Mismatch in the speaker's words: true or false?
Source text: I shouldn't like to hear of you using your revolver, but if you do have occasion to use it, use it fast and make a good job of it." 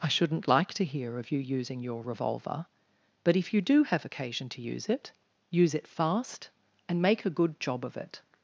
false